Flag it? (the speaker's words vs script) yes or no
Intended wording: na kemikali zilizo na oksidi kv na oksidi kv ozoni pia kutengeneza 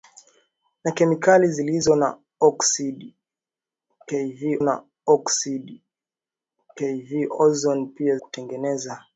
no